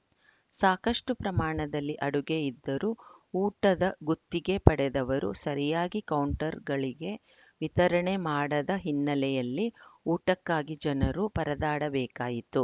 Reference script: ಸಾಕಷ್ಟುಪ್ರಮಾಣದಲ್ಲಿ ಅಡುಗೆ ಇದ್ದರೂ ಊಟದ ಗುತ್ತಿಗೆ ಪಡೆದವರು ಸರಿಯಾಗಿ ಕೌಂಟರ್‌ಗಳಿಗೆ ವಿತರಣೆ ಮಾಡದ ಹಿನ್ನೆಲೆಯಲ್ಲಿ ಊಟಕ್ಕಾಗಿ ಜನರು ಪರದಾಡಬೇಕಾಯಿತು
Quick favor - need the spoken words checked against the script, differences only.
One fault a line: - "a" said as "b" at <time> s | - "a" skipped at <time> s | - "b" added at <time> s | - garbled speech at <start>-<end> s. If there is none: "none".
none